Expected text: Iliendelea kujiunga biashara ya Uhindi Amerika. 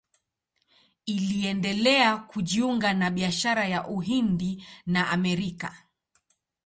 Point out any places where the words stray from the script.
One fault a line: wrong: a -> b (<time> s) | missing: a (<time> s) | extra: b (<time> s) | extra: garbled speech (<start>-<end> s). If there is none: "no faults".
extra: na (2.9 s)
extra: na (4.8 s)